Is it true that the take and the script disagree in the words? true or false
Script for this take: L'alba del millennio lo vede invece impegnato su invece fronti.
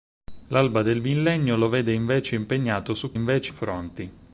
false